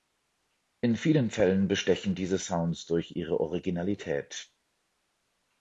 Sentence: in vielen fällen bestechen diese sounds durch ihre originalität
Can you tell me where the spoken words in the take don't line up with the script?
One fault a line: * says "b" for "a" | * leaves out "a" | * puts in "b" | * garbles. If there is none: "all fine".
all fine